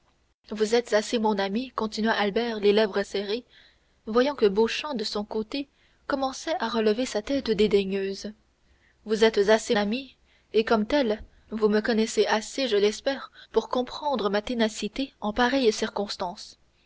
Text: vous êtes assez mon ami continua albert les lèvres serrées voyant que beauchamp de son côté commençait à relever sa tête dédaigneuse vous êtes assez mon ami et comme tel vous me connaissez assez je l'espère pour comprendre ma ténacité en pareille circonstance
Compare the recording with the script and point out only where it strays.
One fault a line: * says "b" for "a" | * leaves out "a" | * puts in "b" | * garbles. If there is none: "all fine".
* leaves out "mon"